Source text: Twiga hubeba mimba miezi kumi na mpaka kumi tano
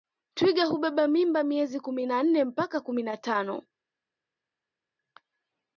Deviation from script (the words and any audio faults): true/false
true